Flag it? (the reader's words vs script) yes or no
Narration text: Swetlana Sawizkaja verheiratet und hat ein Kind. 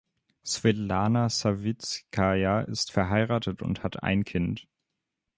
yes